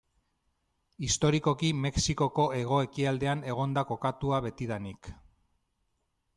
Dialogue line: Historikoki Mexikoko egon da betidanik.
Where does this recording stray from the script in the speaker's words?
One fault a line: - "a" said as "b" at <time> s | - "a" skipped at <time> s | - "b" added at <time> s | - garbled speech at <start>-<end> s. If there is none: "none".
- "hego ekialdean" added at 2.6 s
- "kokatua" added at 3.9 s